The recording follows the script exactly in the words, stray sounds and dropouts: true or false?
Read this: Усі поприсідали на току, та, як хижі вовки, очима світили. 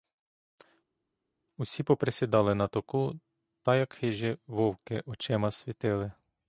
true